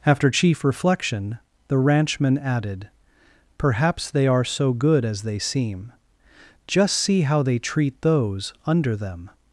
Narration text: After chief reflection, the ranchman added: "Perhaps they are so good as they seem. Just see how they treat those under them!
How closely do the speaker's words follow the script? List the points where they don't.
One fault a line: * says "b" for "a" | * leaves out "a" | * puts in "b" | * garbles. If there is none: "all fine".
all fine